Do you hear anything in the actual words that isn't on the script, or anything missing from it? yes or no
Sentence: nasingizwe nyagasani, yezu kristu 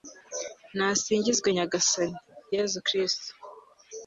no